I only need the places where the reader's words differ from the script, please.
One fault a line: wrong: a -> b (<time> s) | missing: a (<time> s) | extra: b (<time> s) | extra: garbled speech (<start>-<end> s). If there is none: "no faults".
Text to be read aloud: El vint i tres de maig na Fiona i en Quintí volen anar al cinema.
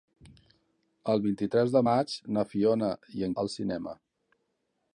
missing: Quintí volen anar (3.3 s)